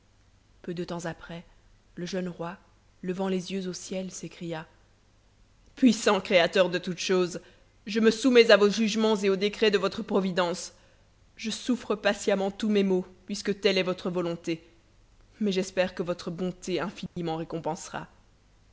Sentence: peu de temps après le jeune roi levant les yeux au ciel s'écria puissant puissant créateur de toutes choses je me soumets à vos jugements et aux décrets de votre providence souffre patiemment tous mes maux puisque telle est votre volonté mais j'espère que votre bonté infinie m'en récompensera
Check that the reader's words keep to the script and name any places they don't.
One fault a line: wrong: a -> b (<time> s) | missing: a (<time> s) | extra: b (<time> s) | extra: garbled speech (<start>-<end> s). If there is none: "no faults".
missing: puissant (6.2 s)
extra: je (11.4 s)